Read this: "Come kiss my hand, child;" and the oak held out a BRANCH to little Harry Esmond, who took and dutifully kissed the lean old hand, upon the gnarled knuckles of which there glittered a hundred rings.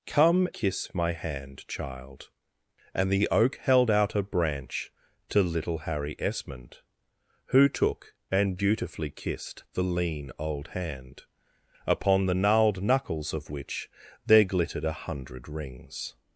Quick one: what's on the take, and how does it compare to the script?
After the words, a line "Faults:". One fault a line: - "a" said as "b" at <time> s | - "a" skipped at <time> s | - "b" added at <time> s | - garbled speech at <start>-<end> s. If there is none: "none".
"Come kiss my hand, child;" and the oak held out a BRANCH to little Harry Esmond, who took and dutifully kissed the lean old hand, upon the gnarled knuckles of which there glittered a hundred rings.
Faults:
none